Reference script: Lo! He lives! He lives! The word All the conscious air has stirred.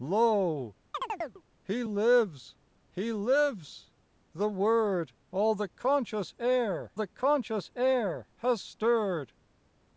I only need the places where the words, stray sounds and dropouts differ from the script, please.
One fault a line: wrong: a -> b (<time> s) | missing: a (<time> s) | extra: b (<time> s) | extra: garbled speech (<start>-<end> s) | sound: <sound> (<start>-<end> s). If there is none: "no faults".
sound: chirp (0.9-1.4 s)
extra: the conscious air (6.9 s)